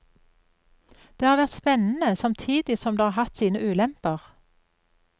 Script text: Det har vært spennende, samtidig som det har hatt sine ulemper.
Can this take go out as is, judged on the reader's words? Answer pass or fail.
pass